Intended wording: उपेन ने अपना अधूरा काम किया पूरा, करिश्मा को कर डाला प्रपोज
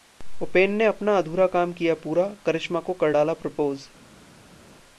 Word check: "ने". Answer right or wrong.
right